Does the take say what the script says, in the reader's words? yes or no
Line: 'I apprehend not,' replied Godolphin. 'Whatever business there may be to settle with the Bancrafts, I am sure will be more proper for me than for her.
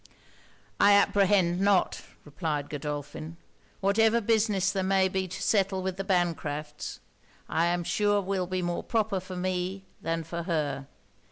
yes